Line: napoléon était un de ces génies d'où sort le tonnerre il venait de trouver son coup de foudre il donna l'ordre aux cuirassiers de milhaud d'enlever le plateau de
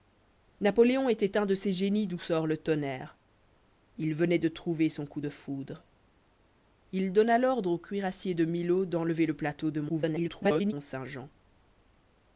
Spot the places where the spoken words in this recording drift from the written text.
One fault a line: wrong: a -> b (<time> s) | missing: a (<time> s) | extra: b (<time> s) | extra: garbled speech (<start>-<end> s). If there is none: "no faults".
extra: garbled speech (9.9-10.7 s)